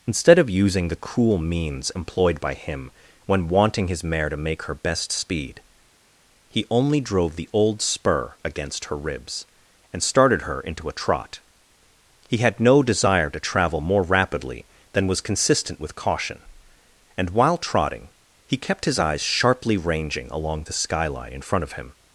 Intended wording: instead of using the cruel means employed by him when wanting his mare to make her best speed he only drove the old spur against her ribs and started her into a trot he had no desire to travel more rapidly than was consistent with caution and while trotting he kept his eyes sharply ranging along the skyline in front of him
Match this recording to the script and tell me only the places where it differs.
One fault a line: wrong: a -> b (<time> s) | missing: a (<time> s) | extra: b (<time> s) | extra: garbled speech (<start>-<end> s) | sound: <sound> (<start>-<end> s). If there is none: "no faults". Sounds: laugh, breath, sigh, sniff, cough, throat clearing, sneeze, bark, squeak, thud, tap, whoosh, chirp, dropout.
no faults